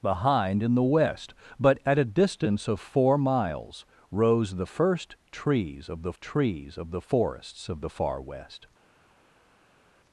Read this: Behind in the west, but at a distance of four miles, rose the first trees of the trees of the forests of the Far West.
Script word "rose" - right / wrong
right